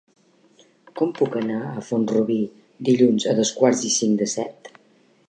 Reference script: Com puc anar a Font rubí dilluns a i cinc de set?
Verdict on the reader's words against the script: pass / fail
fail